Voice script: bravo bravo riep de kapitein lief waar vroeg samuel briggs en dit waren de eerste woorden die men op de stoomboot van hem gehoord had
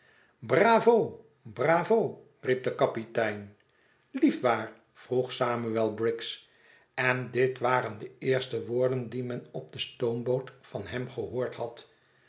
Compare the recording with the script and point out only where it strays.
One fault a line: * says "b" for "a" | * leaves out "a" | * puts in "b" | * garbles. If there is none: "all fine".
all fine